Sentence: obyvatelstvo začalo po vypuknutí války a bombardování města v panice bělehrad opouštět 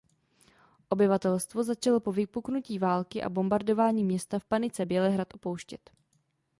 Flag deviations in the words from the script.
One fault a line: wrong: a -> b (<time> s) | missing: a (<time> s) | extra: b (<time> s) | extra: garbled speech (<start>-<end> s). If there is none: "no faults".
no faults